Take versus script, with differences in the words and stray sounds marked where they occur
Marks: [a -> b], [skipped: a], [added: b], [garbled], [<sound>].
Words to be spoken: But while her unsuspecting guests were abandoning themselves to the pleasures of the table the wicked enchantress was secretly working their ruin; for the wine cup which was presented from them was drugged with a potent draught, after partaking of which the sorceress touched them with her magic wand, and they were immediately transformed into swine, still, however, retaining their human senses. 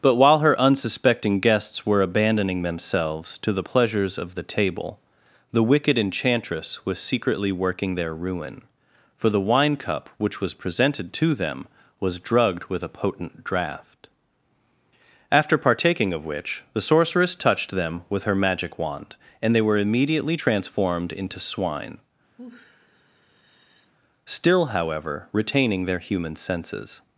But while her unsuspecting guests were abandoning themselves to the pleasures of the table the wicked enchantress was secretly working their ruin; for the wine cup which was presented [from -> to] them was drugged with a potent draught, after partaking of which the sorceress touched them with her magic wand, and they were immediately transformed into swine, [sigh] still, however, retaining their human senses.